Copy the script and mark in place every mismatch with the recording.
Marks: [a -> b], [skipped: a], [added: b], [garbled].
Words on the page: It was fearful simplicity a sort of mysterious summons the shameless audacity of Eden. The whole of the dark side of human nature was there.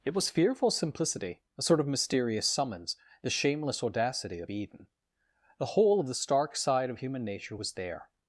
It was fearful simplicity a sort of mysterious summons the shameless audacity of Eden. The whole of the [dark -> stark] side of human nature was there.